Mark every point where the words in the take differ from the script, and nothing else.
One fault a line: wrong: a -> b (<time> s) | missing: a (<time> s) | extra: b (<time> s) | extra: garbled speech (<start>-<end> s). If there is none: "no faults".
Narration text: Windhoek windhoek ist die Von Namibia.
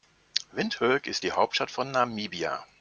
missing: windhoek (1.1 s)
extra: Hauptstadt (1.3 s)